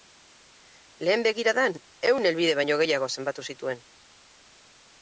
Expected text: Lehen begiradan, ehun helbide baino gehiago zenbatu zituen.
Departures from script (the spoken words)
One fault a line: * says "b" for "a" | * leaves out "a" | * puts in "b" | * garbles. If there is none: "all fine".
all fine